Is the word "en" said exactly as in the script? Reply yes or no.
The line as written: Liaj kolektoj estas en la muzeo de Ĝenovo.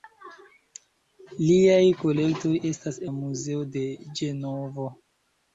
no